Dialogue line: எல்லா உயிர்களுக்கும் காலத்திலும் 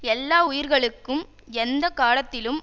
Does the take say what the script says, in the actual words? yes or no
no